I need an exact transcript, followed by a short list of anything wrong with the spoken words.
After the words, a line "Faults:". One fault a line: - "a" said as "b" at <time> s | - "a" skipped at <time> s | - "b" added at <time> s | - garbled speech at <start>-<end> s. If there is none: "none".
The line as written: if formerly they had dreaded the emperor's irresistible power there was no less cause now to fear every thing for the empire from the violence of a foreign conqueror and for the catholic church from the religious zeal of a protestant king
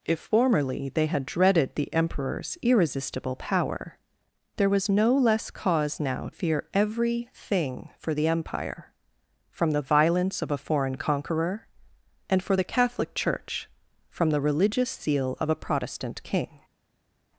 if formerly they had dreaded the emperor's irresistible power there was no less cause now fear every thing for the empire from the violence of a foreign conqueror and for the catholic church from the religious zeal of a protestant king
Faults:
- "to" skipped at 6.3 s